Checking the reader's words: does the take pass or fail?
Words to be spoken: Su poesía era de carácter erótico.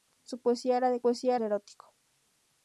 fail